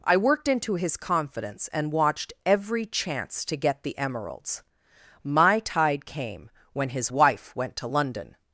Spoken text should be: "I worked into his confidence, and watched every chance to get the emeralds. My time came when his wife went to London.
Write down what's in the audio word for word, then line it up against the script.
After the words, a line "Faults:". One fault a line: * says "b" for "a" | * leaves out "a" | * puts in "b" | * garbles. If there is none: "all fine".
"I worked into his confidence, and watched every chance to get the emeralds. My tide came when his wife went to London.
Faults:
* says "tide" for "time"